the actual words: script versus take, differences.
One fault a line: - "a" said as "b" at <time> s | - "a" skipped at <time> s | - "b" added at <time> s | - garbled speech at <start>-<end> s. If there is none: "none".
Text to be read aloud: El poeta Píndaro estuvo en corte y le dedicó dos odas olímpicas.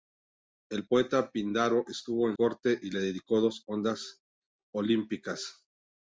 none